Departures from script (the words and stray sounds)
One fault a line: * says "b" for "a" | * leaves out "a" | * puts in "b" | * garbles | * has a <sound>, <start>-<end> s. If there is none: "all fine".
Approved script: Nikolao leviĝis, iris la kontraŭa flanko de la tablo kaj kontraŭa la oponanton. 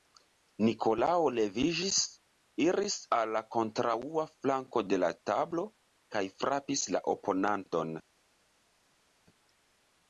* puts in "al"
* says "frapis" for "kontraŭa"